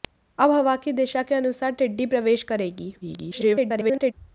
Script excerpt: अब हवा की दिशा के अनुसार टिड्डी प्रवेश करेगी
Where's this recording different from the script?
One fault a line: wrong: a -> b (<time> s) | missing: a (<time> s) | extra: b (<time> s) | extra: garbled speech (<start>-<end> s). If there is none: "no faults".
extra: garbled speech (3.0-4.1 s)